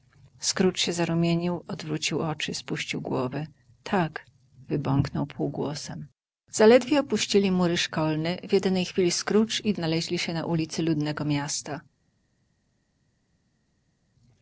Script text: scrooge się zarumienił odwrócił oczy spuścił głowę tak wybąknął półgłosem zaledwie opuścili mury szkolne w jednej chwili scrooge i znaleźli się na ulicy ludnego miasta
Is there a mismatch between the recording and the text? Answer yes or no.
no